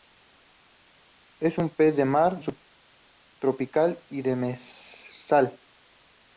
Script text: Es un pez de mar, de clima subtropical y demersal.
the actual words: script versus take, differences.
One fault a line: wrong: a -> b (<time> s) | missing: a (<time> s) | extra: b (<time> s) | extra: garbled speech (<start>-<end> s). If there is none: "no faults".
missing: de clima (2.4 s)